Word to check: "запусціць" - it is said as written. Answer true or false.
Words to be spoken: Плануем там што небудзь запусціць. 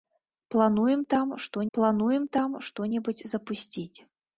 true